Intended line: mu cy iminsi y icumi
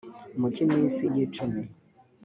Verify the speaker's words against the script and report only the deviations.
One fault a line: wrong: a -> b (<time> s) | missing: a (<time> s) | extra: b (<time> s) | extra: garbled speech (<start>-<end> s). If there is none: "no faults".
no faults